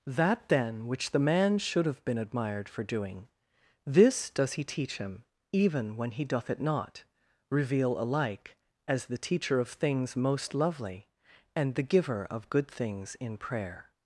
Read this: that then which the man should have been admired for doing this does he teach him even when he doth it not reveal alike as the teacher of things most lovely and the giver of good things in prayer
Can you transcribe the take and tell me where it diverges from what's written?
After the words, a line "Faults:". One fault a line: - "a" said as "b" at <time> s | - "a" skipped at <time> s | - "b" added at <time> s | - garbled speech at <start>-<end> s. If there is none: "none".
that then which the man should have been admired for doing this does he teach him even when he doth it not reveal alike as the teacher of things most lovely and the giver of good things in prayer
Faults:
none